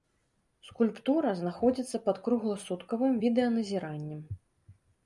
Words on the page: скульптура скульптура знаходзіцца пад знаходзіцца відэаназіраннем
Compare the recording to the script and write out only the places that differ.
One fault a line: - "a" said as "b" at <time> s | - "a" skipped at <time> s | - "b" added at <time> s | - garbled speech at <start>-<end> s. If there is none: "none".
- "скульптура" skipped at 1.3 s
- "знаходзіцца" said as "кругласуткавым" at 2.3 s